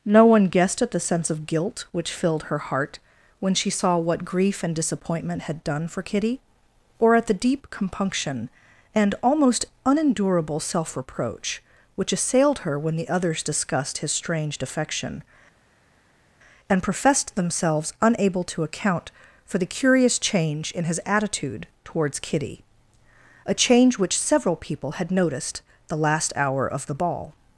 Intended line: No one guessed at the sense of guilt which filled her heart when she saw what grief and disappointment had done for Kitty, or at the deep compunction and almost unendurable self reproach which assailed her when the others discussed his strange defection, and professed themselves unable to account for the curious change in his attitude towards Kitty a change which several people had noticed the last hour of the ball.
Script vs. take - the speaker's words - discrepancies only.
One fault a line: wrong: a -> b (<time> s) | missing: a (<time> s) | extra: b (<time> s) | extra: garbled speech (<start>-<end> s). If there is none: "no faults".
no faults